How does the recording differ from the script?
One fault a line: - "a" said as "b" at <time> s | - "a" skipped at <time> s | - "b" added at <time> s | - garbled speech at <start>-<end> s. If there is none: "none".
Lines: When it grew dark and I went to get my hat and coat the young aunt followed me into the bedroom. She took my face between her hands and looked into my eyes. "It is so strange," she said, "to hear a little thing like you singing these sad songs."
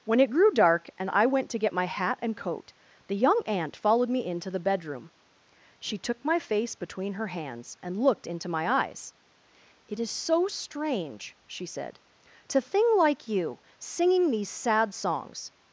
- "hear a little" skipped at 12.6 s